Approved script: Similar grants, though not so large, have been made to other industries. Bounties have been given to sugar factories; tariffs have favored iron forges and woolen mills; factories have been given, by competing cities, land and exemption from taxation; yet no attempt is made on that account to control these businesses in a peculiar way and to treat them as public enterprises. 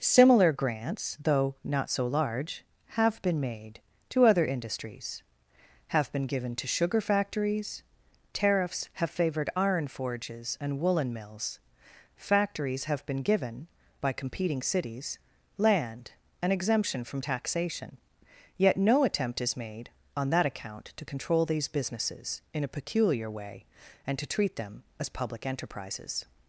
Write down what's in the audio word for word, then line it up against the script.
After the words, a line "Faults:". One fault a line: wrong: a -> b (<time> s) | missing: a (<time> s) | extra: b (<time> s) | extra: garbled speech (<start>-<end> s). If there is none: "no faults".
Similar grants, though not so large, have been made to other industries. have been given to sugar factories; tariffs have favored iron forges and woolen mills; factories have been given, by competing cities, land and exemption from taxation; yet no attempt is made on that account to control these businesses in a peculiar way and to treat them as public enterprises.
Faults:
missing: Bounties (5.2 s)